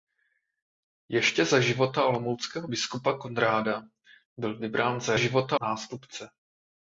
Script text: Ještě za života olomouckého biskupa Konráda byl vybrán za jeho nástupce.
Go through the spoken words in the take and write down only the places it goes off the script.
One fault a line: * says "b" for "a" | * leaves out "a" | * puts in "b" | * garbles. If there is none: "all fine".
* says "života" for "jeho"